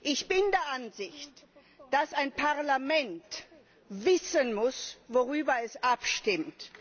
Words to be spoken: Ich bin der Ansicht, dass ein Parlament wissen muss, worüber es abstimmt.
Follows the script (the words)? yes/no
yes